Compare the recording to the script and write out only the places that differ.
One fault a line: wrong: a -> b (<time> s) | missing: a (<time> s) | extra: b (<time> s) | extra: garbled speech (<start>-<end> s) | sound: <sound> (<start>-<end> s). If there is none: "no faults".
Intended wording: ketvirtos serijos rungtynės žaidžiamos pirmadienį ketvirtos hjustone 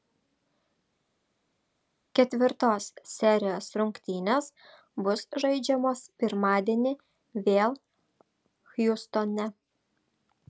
extra: bus (5.1 s)
wrong: ketvirtos -> vėl (7.5 s)